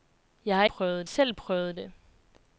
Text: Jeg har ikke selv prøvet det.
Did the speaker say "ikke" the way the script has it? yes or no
no